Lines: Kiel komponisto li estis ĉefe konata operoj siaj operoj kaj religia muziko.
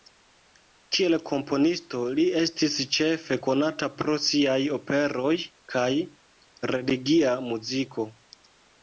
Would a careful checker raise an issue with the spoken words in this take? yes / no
yes